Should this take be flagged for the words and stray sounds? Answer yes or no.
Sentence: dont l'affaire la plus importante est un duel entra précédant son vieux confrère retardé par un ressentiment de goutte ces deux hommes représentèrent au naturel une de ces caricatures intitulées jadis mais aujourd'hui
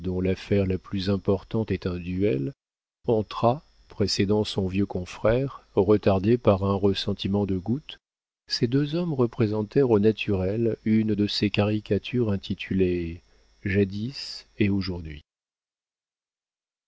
yes